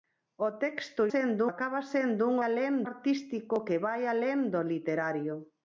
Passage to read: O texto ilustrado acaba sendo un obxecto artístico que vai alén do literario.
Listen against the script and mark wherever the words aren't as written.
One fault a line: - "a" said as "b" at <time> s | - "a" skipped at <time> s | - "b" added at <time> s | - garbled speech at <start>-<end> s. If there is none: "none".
- "ilustrado" said as "sendo" at 1.1 s
- "obxecto" said as "alén" at 2.5 s